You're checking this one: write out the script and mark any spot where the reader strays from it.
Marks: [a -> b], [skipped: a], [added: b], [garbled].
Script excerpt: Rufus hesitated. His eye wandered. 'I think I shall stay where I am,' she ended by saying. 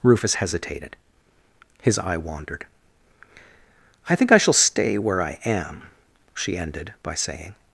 Rufus hesitated. His eye wandered. 'I think I shall stay where I am,' she ended by saying.